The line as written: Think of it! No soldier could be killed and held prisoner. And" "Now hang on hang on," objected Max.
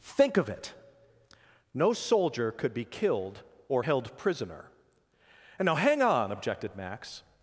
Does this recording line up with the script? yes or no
no